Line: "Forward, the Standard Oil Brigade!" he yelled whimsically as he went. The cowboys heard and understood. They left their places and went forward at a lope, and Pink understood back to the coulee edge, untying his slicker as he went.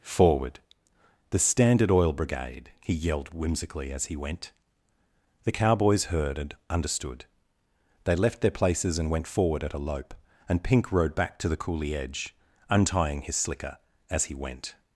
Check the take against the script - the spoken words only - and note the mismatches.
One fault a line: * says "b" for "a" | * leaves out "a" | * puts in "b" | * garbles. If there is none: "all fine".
* says "rode" for "understood"